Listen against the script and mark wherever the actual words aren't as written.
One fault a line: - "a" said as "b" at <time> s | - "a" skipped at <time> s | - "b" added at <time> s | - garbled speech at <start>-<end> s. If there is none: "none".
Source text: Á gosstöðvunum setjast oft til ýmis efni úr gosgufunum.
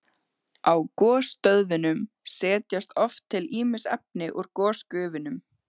none